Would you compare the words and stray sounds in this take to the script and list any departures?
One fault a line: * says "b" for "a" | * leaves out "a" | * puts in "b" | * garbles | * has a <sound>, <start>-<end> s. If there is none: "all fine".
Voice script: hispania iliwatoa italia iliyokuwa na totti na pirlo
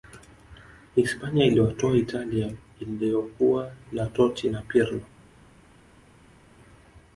all fine